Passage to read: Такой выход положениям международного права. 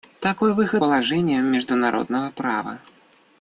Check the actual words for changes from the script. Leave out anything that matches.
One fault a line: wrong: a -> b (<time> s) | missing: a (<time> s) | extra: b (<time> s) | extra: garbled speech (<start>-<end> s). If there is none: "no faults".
no faults